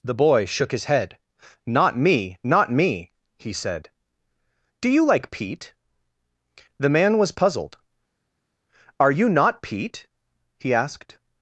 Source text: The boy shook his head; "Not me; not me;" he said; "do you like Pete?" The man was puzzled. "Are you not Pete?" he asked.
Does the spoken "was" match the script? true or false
true